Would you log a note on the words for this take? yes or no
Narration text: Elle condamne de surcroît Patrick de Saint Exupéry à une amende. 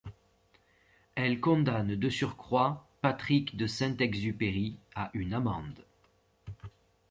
no